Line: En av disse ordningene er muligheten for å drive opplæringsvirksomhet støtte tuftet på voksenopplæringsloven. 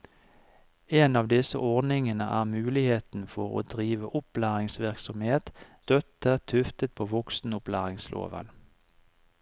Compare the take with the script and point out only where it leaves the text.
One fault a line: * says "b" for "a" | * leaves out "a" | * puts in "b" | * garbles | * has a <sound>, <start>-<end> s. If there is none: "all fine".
all fine